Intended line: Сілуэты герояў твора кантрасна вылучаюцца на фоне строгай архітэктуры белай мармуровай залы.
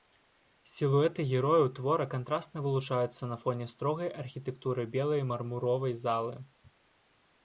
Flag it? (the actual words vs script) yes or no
no